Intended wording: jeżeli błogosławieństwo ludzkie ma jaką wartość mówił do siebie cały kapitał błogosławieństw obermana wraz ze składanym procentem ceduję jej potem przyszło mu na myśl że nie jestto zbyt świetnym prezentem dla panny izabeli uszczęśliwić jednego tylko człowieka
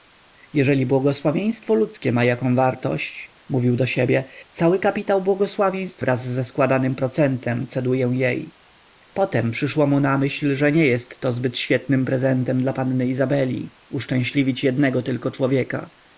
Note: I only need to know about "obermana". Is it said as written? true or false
false